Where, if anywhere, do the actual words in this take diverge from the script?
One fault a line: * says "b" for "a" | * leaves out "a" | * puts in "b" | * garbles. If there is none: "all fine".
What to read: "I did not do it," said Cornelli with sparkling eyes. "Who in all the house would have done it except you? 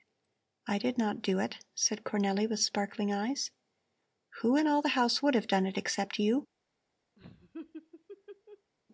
all fine